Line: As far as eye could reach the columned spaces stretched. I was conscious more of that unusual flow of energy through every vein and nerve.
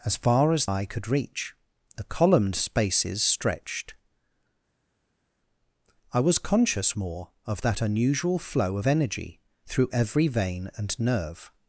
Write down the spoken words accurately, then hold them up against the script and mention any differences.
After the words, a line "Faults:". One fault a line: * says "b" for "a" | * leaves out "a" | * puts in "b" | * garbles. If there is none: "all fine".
As far as eye could reach the columned spaces stretched. I was conscious more of that unusual flow of energy through every vein and nerve.
Faults:
all fine